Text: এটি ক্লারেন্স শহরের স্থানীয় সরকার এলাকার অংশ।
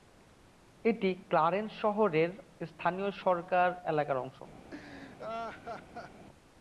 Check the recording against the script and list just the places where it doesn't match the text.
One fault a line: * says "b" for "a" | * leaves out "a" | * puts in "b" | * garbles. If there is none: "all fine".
all fine